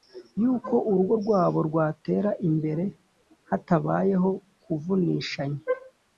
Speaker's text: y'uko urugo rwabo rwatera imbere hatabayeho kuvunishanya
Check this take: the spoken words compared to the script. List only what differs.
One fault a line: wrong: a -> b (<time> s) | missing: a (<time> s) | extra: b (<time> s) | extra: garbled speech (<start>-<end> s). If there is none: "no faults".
no faults